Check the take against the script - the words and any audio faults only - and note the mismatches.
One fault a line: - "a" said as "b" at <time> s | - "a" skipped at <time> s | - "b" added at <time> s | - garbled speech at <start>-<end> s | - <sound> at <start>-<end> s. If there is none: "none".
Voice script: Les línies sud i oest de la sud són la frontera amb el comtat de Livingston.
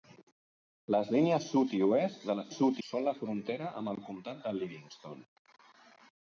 none